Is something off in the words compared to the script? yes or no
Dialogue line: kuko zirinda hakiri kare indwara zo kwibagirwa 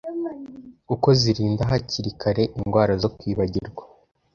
no